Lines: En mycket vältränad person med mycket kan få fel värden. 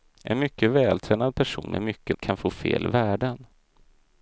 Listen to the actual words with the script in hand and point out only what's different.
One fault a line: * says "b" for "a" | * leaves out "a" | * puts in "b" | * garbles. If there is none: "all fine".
all fine